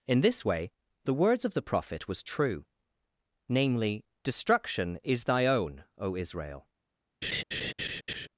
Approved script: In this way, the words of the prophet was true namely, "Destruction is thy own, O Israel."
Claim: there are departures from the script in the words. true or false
false